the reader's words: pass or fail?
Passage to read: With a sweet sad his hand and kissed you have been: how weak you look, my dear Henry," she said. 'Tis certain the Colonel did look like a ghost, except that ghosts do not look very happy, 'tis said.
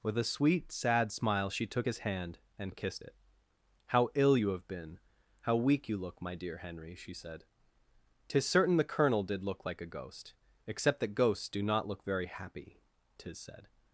fail